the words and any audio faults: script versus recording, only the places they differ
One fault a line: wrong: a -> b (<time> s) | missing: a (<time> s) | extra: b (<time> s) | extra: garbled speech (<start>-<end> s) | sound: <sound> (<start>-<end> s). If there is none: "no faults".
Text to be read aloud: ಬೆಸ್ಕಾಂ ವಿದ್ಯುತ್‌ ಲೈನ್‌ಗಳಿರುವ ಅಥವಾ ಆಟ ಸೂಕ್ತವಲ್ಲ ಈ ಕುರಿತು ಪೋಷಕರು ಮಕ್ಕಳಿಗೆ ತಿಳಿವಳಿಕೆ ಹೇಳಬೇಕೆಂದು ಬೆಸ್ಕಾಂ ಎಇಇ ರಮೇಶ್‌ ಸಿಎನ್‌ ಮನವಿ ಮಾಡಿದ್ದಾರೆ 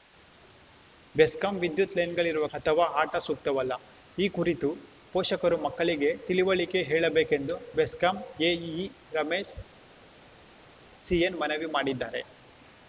no faults